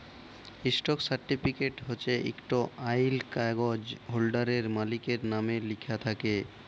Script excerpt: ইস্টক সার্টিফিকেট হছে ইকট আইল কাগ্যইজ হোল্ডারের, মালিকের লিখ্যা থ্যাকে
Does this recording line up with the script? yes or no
no